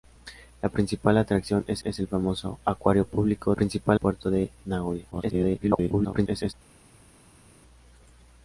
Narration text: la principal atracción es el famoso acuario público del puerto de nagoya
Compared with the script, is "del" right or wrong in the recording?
wrong